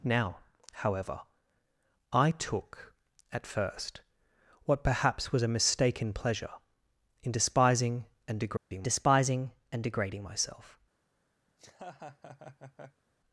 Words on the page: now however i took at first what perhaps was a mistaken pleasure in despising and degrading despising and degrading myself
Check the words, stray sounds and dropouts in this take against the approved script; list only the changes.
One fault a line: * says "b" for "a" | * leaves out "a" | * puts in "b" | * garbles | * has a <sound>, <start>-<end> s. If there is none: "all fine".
* has a dropout, 8.6-8.7 s
* has a laugh, 11.5-13.0 s